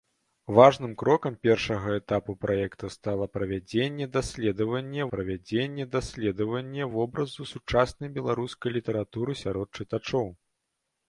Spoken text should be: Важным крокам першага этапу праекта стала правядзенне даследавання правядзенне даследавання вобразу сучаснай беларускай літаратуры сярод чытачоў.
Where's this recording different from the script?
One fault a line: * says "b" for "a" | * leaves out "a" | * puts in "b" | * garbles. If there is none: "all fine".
all fine